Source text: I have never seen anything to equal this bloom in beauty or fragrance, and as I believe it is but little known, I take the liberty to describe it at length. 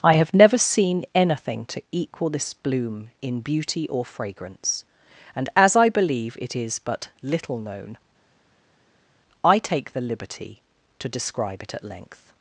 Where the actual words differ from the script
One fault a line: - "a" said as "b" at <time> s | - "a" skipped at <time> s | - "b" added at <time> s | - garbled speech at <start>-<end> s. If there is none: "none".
none